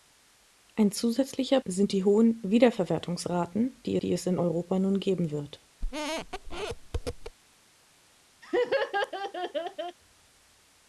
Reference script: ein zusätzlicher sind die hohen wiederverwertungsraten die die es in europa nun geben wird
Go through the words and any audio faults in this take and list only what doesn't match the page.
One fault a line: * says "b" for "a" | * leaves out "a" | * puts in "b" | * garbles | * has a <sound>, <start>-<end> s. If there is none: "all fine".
* has a squeak, 5.8-7.4 s
* has a laugh, 8.4-10.0 s